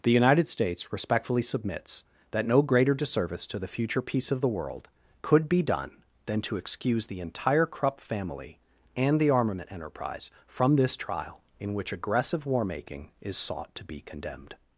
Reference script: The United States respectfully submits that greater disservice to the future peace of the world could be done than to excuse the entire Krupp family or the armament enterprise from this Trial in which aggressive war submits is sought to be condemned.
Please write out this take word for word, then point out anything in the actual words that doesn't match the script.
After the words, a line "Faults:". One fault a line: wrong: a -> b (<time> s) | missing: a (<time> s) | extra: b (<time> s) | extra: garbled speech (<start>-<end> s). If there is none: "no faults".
The United States respectfully submits that no greater disservice to the future peace of the world could be done than to excuse the entire Krupp family and the armament enterprise from this Trial in which aggressive war making is sought to be condemned.
Faults:
extra: no (2.5 s)
wrong: or -> and (8.9 s)
wrong: submits -> making (12.6 s)